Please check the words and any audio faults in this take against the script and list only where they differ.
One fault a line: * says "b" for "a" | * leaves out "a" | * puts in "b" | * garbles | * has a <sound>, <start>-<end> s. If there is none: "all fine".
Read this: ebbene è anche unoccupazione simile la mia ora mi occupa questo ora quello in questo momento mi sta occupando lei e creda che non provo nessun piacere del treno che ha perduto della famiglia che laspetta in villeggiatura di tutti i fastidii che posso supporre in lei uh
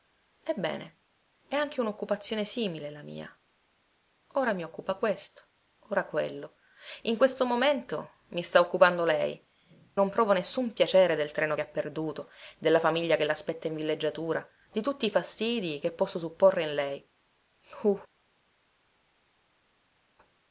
* leaves out "e creda che"